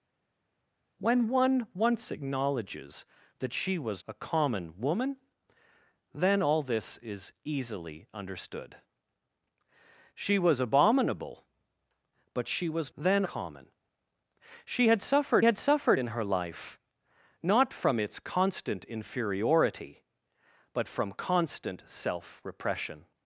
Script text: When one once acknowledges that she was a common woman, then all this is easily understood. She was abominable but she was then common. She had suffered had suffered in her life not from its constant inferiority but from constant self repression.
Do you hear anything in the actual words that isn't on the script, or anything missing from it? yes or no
no